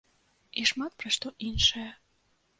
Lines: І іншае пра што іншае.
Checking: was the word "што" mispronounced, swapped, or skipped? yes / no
no